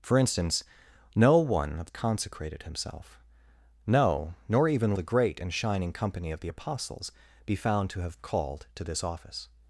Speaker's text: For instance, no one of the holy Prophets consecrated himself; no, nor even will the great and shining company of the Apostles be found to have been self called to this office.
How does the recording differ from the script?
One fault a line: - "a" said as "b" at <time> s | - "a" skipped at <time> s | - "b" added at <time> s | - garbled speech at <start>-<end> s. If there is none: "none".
- "the holy Prophets" skipped at 1.9 s
- "will" skipped at 4.9 s
- "been self" skipped at 8.2 s